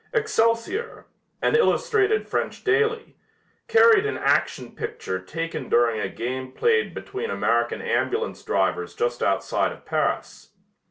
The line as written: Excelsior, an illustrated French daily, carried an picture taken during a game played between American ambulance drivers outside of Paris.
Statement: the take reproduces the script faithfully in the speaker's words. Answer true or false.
false